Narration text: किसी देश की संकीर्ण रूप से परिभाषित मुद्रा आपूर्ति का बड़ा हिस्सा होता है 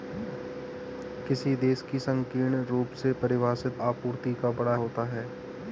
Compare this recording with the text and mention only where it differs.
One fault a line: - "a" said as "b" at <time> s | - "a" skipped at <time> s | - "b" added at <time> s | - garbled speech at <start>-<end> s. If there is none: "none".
- "मुद्रा" skipped at 3.8 s
- "हिस्सा" skipped at 4.8 s